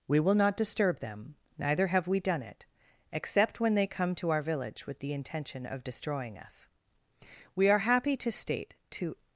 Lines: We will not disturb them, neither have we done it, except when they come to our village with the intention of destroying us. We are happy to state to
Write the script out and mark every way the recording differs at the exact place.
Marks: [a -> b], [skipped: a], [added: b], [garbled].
We will not disturb them, neither have we done it, except when they come to our village with the intention of destroying us. We are happy to state to